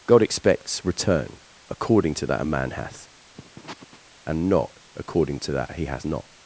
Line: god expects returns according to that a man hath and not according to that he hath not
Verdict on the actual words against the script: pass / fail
fail